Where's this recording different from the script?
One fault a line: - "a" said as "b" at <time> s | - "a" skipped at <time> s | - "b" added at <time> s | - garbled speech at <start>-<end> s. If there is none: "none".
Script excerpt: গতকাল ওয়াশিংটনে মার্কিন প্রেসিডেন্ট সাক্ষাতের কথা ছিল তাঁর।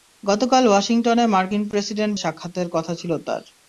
none